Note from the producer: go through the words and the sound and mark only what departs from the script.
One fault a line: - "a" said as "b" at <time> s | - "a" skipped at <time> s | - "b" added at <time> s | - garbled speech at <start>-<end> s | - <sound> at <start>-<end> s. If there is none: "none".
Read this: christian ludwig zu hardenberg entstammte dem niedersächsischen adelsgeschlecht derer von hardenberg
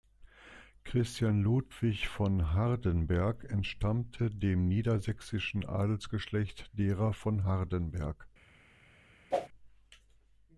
- "zu" said as "von" at 2.0 s
- whoosh at 9.3-9.5 s